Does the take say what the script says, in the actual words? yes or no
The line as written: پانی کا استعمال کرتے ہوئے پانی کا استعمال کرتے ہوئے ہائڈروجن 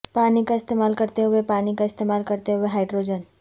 yes